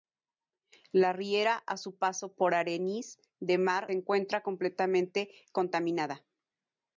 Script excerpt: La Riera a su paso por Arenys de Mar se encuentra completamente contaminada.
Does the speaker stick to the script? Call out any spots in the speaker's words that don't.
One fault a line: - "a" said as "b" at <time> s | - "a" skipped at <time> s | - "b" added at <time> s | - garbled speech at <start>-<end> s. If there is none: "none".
- "se" skipped at 3.9 s